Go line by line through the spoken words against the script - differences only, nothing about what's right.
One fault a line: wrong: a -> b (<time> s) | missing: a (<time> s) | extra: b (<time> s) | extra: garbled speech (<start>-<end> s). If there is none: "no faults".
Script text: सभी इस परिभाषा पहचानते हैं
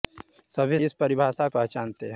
no faults